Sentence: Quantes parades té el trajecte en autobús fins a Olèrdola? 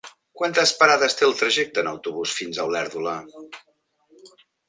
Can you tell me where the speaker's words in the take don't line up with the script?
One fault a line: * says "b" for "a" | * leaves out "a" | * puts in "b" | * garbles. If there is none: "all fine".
all fine